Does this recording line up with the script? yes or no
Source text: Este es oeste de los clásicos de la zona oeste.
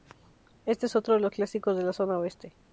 no